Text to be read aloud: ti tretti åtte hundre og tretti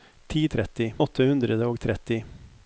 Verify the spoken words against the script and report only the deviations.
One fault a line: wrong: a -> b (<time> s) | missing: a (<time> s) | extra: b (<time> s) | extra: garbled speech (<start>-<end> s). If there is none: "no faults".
no faults